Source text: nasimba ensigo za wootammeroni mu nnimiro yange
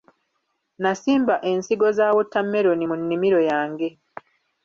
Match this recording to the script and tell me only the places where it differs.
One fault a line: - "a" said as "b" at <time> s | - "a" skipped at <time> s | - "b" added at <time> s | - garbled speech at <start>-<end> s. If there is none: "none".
none